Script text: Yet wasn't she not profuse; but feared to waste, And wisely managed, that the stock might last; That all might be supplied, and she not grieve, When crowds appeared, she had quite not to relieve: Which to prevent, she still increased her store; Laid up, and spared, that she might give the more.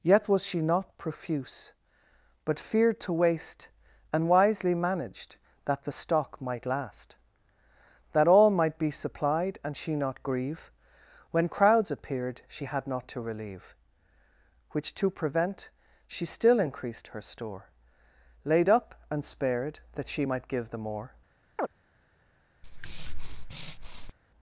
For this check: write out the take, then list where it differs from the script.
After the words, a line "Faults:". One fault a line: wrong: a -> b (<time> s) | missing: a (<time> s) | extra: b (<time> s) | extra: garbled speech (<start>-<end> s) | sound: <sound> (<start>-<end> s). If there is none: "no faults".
Yet was she not profuse; but feared to waste, And wisely managed, that the stock might last; That all might be supplied, and she not grieve, When crowds appeared, she had not to relieve: Which to prevent, she still increased her store; Laid up, and spared, that she might give the more.
Faults:
wrong: wasn't -> was (0.3 s)
missing: quite (12.9 s)
sound: chirp (21.6-21.7 s)
sound: breath (22.6-24.1 s)